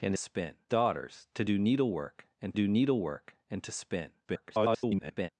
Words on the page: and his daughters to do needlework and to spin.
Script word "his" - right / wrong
wrong